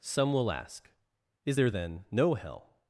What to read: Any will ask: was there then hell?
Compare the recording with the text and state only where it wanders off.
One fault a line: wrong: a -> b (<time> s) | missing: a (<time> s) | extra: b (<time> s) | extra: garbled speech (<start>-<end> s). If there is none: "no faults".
wrong: Any -> Some (0.0 s)
wrong: was -> is (1.4 s)
extra: no (2.1 s)